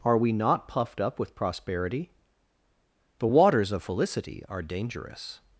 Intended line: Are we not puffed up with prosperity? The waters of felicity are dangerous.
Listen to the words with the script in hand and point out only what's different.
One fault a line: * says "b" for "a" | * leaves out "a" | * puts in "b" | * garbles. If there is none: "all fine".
all fine